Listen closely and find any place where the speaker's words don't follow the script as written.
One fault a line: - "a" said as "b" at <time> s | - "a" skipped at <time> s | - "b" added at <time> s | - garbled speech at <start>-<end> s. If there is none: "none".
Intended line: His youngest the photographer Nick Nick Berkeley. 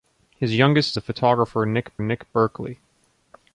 none